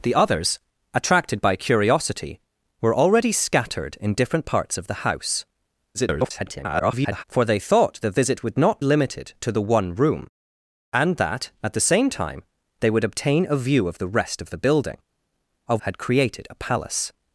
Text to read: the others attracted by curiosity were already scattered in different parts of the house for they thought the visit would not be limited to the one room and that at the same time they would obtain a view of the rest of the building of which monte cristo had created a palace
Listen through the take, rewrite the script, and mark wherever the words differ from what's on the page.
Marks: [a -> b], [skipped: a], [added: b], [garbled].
the others attracted by curiosity were already scattered in different parts of the house [garbled] for they thought the visit would not [skipped: be] limited to the one room and that at the same time they would obtain a view of the rest of the building of [skipped: which monte cristo] had created a palace